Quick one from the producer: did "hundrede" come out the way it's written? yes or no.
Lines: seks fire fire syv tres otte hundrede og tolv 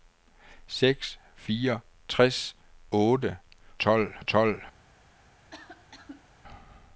no